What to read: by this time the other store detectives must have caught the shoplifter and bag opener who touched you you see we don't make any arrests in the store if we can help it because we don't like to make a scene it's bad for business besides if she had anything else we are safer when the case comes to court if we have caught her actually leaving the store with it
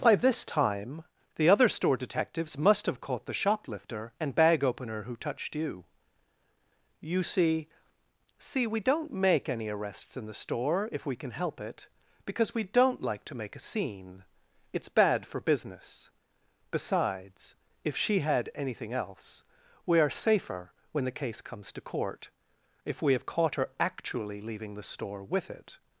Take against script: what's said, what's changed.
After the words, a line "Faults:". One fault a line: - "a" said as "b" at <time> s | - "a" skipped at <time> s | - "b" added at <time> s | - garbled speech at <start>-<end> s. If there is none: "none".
by this time the other store detectives must have caught the shoplifter and bag opener who touched you you see see we don't make any arrests in the store if we can help it because we don't like to make a scene it's bad for business besides if she had anything else we are safer when the case comes to court if we have caught her actually leaving the store with it
Faults:
- "see" added at 8.4 s